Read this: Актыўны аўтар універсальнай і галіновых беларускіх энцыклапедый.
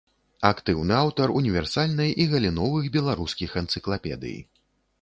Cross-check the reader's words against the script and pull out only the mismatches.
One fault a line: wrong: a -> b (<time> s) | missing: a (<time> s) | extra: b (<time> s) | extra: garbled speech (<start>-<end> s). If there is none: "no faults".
no faults